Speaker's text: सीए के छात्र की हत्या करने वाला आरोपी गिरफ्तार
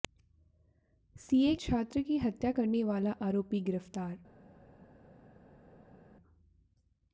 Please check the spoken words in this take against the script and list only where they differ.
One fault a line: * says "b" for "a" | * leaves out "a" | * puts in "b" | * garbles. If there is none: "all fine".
* leaves out "के"